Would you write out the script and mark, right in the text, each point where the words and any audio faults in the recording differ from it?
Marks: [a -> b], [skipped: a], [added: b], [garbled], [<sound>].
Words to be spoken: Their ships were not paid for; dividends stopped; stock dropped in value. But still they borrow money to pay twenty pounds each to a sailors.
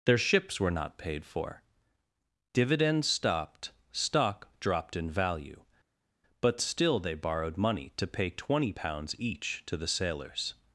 Their ships were not paid for; dividends stopped; stock dropped in value. But still they [borrow -> borrowed] money to pay twenty pounds each to [a -> the] sailors.